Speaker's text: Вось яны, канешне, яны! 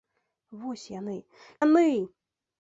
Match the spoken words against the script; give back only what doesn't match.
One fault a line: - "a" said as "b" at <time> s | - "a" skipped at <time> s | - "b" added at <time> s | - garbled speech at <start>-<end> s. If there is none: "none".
- "канешне" skipped at 1.2 s